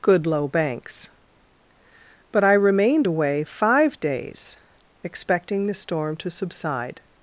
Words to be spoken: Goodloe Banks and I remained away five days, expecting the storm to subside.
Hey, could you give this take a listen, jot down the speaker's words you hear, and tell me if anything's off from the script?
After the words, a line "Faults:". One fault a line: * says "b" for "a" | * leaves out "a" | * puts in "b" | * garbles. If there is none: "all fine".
Goodloe Banks but I remained away five days, expecting the storm to subside.
Faults:
* says "but" for "and"